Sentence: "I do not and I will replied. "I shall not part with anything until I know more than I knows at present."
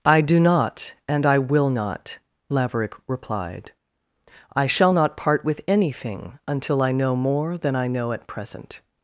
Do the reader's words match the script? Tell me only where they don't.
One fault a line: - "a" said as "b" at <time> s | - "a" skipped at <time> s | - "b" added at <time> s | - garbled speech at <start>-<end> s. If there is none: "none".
- "not Laverick" added at 1.7 s
- "knows" said as "know" at 7.9 s